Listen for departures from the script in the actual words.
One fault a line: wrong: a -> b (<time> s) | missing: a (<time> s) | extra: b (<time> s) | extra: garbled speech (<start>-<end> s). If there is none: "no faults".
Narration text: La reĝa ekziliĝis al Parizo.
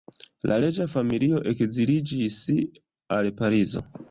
extra: familio (0.9 s)